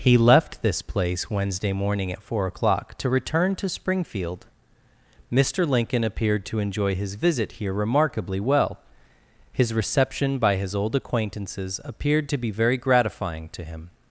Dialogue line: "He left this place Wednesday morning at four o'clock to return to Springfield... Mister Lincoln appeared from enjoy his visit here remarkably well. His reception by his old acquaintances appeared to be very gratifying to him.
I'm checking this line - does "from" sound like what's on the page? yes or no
no